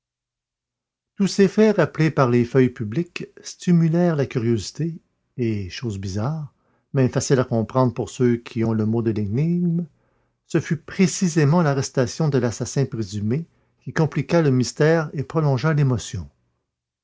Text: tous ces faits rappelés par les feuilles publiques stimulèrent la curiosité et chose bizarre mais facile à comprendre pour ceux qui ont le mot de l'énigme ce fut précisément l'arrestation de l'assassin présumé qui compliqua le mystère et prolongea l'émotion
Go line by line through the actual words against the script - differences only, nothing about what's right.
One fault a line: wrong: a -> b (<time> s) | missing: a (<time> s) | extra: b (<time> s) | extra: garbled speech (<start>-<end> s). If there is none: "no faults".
no faults